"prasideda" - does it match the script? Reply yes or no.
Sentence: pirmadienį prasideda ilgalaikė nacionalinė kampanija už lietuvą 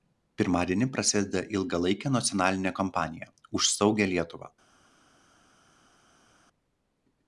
yes